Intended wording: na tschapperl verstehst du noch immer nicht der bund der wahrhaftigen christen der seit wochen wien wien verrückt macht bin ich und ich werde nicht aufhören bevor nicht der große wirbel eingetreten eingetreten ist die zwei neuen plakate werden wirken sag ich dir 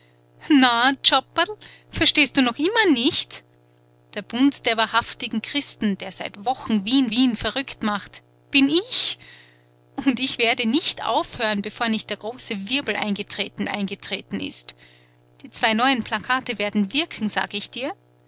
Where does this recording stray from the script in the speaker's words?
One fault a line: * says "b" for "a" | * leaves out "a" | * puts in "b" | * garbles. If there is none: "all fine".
all fine